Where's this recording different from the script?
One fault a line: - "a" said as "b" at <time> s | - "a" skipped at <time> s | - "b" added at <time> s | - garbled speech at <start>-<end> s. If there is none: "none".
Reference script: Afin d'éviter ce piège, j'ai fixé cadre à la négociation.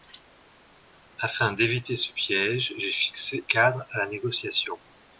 none